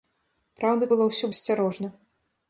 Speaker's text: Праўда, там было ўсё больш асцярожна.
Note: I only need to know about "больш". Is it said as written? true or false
false